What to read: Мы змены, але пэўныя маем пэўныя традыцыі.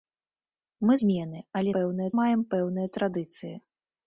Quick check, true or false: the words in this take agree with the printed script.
true